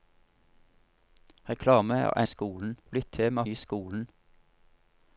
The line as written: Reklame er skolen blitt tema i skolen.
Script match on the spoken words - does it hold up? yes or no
yes